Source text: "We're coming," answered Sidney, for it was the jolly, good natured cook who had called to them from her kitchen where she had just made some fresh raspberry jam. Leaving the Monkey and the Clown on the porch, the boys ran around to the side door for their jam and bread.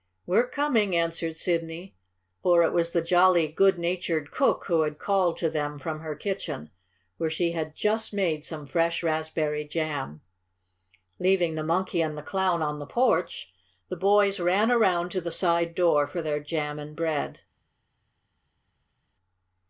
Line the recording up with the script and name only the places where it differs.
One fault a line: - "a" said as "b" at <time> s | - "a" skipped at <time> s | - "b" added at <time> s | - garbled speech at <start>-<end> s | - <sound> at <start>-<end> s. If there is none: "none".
none